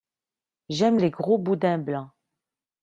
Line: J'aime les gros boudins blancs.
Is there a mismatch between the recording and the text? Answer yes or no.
no